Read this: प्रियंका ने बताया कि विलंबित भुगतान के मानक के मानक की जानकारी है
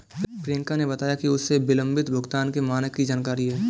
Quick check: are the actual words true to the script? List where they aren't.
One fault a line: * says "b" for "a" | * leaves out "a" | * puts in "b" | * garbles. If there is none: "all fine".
* puts in "उसे"
* leaves out "के मानक"